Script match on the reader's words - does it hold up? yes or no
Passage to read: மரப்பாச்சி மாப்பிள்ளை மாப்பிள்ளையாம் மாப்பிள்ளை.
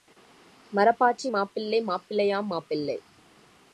yes